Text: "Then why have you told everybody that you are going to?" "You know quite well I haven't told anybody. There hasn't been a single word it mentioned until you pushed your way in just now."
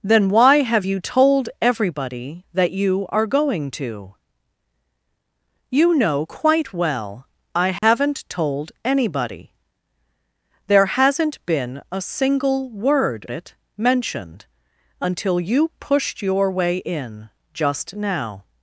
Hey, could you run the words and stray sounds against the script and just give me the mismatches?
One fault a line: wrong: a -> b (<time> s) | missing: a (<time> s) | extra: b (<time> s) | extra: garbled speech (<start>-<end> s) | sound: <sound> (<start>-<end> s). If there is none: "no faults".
sound: dropout (7.8-7.8 s)